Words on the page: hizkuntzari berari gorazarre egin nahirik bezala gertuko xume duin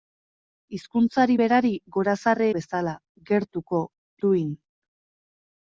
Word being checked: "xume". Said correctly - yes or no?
no